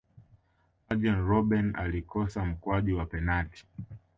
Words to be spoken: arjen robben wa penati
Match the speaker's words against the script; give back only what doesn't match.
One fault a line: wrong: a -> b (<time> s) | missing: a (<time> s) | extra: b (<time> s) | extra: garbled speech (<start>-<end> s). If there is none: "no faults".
extra: alikosa mkwaju (1.8 s)